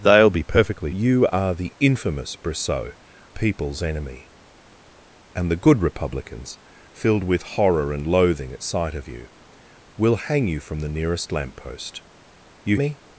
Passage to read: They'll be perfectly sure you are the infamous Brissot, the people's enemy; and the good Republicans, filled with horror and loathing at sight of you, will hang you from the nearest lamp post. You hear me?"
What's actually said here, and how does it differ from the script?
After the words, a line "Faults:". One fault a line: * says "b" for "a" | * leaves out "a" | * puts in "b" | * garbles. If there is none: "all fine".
They'll be perfectly you are the infamous Brissot, people's enemy; and the good Republicans, filled with horror and loathing at sight of you, will hang you from the nearest lamp post. You me?"
Faults:
* leaves out "sure"
* leaves out "the"
* leaves out "hear"